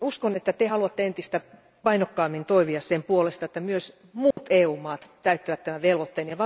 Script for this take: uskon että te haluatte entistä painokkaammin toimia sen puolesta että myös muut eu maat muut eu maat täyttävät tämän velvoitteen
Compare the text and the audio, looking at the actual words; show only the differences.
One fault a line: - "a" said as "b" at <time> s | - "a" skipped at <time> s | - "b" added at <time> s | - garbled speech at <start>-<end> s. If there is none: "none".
- "muut eu maat" skipped at 5.1 s